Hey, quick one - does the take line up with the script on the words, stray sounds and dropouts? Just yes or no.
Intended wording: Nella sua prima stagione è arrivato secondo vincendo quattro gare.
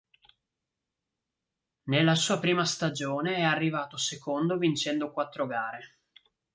yes